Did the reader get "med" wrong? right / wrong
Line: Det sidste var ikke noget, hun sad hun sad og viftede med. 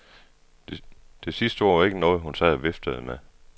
right